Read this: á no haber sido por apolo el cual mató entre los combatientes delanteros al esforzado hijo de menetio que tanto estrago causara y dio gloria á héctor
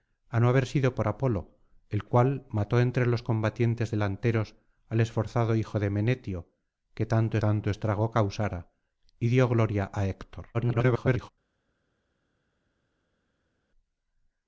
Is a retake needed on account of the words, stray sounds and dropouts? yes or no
yes